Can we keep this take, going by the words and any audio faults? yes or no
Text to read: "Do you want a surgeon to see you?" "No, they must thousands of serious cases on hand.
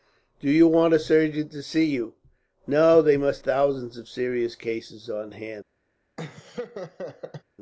no